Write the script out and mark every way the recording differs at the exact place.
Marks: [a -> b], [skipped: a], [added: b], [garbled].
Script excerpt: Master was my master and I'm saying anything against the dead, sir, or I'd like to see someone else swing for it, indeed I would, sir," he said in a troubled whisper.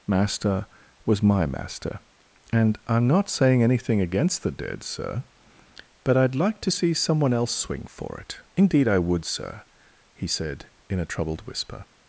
Master was my master and I'm [added: not] saying anything against the dead, sir, [or -> but] I'd like to see someone else swing for it, indeed I would, sir," he said in a troubled whisper.